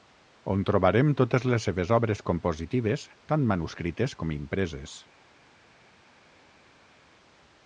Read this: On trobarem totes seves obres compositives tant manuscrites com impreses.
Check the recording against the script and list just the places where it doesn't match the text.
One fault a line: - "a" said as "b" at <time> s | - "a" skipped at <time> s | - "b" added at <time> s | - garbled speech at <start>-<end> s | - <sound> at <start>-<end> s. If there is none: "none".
- "les" added at 1.5 s